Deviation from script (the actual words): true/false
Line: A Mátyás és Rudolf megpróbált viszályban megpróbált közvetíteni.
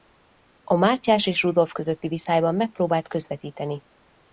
true